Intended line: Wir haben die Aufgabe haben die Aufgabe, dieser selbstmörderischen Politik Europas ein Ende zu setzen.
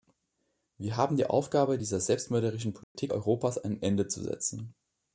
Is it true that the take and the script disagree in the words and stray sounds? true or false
true